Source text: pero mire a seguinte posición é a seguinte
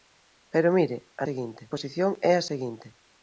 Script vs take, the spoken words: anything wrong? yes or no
no